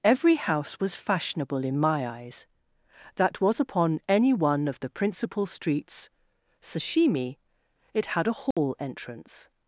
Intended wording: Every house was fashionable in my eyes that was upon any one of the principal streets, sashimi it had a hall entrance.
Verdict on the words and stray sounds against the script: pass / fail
fail